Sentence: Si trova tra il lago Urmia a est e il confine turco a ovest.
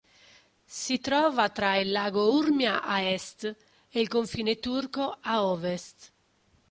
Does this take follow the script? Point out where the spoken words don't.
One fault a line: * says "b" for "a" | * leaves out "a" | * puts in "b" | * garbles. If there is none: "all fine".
all fine